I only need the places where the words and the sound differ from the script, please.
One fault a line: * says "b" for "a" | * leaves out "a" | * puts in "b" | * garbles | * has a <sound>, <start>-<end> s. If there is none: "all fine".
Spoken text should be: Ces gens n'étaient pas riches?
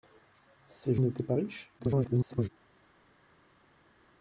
* leaves out "gens"
* garbles